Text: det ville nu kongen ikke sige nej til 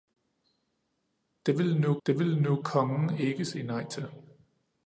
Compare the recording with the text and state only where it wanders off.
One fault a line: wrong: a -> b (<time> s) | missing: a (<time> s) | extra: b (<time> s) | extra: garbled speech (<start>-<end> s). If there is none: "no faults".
extra: det ville nu (2.1 s)